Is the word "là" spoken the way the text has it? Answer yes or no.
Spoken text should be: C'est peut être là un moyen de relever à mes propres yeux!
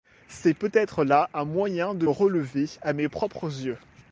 yes